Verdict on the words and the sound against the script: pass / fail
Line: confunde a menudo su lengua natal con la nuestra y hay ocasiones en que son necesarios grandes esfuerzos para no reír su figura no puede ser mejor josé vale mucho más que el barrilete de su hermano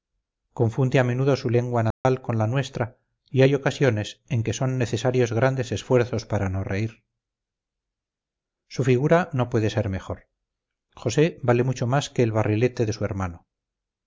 fail